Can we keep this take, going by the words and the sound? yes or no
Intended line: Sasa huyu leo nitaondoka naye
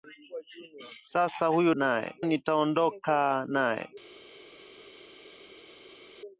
no